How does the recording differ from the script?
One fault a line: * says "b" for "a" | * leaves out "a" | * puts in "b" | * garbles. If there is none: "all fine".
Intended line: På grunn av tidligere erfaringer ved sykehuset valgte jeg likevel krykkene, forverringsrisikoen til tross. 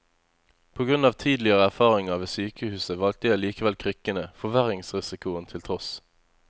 all fine